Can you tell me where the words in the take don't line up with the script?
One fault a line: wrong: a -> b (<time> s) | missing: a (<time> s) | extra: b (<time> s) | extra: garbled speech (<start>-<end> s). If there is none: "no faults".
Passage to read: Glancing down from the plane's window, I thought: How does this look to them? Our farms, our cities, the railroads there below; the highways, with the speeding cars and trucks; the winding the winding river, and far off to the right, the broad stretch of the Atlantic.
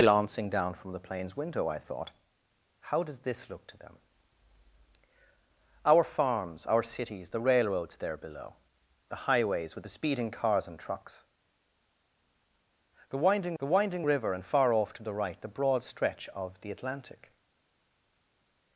no faults